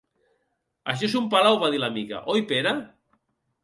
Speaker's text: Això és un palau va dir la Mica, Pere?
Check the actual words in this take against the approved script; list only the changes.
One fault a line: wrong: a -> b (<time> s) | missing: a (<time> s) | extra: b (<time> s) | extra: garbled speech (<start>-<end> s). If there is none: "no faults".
extra: oi (2.4 s)